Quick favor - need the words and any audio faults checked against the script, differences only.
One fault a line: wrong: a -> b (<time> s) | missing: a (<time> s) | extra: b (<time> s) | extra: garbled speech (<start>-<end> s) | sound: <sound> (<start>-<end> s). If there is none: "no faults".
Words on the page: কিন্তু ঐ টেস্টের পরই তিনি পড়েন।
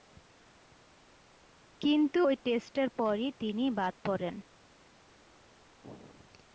extra: বাদ (3.8 s)